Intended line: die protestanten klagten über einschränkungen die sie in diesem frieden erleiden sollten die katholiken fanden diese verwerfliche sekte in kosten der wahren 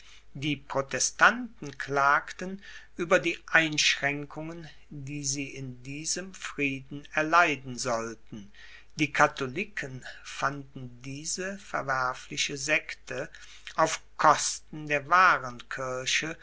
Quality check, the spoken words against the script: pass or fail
fail